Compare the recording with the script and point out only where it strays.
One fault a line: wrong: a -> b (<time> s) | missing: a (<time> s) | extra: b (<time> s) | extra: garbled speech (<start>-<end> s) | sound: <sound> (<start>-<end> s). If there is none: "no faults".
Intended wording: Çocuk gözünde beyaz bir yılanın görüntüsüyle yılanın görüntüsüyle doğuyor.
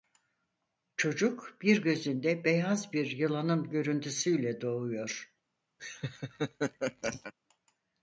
extra: bir (1.6 s)
missing: yılanın görüntüsüyle (4.6 s)
sound: laugh (5.8-7.3 s)